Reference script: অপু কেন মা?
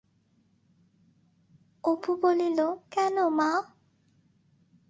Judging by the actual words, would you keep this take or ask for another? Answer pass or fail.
fail